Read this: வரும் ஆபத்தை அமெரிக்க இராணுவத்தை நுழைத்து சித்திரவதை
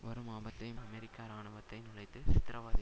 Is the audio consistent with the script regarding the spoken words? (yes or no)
yes